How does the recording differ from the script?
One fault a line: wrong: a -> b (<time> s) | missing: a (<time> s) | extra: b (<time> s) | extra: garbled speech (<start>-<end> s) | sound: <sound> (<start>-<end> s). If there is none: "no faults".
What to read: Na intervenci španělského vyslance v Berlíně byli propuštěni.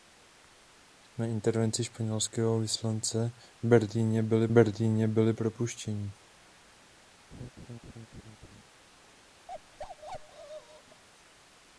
extra: Berlíně byli (4.5 s)
sound: laugh (7.3-8.6 s)
sound: bark (9.5-11.0 s)